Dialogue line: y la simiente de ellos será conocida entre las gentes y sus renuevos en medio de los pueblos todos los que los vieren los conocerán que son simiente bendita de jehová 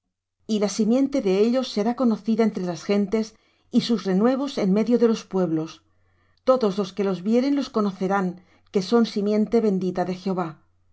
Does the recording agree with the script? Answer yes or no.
yes